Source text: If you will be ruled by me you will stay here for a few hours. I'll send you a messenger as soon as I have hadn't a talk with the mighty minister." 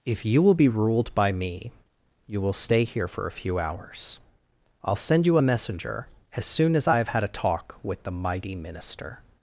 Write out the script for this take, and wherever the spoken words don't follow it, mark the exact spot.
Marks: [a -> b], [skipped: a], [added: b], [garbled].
If you will be ruled by me you will stay here for a few hours. I'll send you a messenger as soon as I have [hadn't -> had] a talk with the mighty minister."